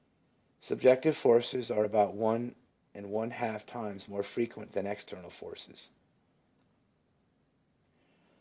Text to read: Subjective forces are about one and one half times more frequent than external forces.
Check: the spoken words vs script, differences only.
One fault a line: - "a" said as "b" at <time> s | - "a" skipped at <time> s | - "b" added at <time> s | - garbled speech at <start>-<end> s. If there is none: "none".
none